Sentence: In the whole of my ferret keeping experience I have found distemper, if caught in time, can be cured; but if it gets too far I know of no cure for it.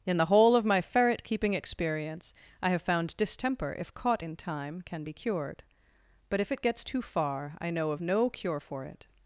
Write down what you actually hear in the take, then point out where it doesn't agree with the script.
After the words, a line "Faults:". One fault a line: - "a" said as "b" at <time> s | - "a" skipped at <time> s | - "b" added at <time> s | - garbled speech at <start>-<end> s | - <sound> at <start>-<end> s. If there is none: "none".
In the whole of my ferret keeping experience I have found distemper, if caught in time, can be cured; but if it gets too far I know of no cure for it.
Faults:
none